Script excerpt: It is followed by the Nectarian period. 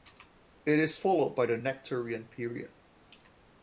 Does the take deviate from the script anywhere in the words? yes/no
no